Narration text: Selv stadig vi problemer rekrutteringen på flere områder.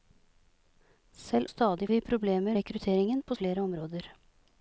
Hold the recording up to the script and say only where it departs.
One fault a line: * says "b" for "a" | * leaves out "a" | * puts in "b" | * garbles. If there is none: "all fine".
all fine